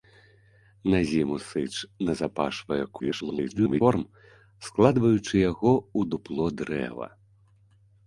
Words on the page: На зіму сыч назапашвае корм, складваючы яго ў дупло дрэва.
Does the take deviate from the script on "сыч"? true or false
false